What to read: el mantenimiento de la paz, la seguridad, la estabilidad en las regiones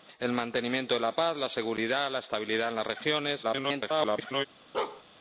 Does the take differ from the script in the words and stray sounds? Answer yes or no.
yes